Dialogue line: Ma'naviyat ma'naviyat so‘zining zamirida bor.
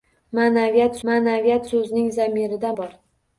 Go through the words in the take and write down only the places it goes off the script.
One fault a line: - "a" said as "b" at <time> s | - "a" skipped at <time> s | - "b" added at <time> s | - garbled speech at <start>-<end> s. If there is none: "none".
none